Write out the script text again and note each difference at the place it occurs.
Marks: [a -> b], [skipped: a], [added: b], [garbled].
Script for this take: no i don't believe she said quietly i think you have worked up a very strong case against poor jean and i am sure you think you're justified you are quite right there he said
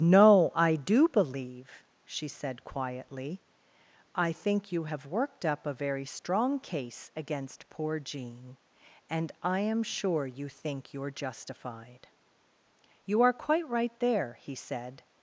no i [don't -> do] believe she said quietly i think you have worked up a very strong case against poor jean and i am sure you think you're justified you are quite right there he said